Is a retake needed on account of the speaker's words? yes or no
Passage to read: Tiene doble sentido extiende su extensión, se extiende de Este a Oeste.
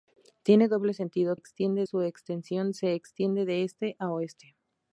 no